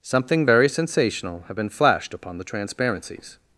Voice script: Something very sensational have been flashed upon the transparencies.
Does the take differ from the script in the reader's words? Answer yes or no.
no